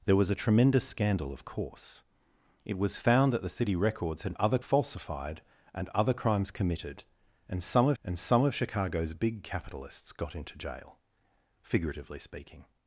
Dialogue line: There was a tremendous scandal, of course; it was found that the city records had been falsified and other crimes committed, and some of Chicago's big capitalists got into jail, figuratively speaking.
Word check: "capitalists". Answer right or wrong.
right